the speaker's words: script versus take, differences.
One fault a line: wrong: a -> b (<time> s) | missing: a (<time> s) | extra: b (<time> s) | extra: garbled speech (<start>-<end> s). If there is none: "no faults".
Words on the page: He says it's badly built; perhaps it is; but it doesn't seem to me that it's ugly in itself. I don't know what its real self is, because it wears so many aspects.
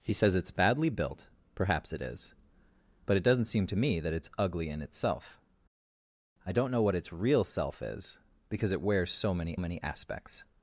extra: many (9.6 s)